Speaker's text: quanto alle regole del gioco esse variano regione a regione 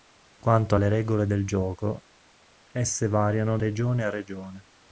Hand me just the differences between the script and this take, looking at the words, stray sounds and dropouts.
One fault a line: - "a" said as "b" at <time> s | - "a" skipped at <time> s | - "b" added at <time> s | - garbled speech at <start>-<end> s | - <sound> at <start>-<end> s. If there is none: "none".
none